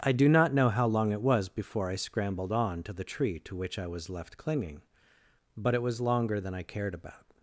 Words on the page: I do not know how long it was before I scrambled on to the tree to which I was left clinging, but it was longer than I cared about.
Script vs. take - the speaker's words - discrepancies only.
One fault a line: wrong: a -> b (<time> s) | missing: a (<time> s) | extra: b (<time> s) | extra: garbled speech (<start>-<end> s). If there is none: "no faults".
no faults